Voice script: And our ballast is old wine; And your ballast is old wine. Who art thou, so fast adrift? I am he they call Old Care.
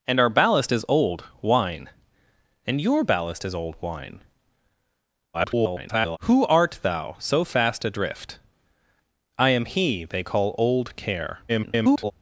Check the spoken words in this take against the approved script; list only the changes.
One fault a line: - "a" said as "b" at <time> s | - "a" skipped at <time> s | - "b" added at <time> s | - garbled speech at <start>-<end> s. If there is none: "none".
- garbled speech at 5.3-6.2 s
- garbled speech at 11.5-12.1 s